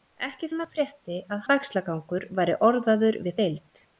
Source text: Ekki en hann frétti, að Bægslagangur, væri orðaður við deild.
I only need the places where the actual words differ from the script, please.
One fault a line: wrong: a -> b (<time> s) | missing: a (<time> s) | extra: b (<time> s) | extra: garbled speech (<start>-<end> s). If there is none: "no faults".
no faults